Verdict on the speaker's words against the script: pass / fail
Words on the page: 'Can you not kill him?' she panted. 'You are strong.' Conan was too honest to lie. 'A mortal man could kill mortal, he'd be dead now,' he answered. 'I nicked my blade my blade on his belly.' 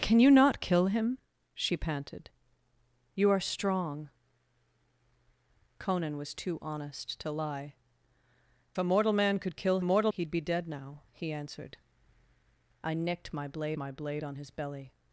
pass